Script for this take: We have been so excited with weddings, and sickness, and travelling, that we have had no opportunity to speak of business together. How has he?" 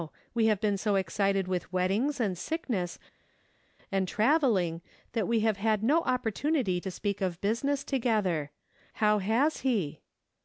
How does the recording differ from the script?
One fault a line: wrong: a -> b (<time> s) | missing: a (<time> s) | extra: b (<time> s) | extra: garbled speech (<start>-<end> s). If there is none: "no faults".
no faults